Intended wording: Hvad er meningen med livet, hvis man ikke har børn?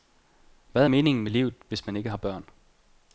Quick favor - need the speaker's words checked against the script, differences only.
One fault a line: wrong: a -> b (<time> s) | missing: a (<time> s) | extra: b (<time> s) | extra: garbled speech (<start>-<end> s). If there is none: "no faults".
no faults